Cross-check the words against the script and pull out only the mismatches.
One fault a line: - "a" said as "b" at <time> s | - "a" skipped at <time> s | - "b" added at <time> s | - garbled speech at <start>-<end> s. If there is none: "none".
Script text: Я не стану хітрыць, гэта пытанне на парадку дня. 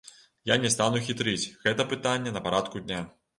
none